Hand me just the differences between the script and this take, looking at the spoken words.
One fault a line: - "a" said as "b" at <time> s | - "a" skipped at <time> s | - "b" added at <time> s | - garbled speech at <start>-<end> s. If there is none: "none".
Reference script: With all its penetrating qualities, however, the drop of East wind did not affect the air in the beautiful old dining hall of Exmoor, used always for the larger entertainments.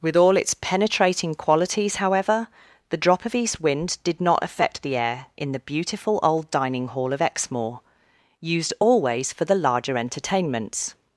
none